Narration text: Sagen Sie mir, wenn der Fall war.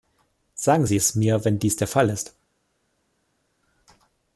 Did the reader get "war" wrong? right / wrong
wrong